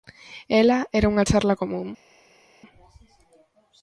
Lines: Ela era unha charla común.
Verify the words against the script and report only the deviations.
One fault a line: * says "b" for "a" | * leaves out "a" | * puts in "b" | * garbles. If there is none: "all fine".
all fine